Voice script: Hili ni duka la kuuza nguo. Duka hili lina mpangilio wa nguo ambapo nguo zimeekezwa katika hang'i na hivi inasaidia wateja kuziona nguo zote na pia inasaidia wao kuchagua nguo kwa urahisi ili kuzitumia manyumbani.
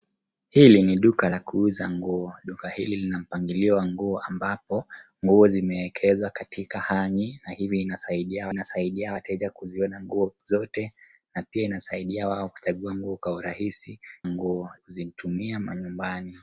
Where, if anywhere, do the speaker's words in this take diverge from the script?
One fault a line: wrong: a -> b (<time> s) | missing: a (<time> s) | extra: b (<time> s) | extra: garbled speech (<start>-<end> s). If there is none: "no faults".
extra: inasaidia (8.5 s)
wrong: ili -> nguo (14.3 s)